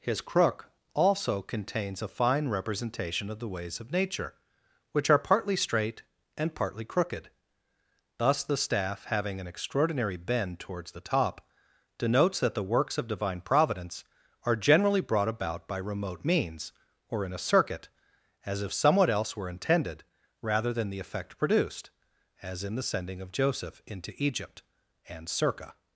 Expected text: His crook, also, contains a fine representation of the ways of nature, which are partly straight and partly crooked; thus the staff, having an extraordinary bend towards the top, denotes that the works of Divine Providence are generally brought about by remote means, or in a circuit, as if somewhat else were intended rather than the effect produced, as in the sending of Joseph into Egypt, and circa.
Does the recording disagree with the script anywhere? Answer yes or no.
no